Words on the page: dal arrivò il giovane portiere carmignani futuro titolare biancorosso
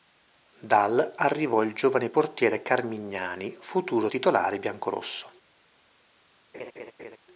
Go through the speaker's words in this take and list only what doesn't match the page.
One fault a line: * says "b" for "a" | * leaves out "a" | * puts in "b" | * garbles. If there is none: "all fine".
all fine